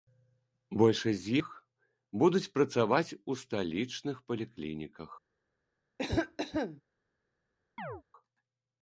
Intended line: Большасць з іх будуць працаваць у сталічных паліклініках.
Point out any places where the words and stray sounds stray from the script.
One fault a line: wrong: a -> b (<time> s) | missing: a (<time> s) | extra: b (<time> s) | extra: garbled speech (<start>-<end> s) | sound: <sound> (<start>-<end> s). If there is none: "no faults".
sound: cough (6.0-6.8 s)
sound: chirp (7.8-8.0 s)